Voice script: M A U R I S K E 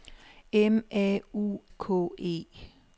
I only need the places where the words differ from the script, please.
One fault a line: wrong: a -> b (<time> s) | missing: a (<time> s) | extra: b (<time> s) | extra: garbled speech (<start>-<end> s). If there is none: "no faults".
missing: R I S (1.6 s)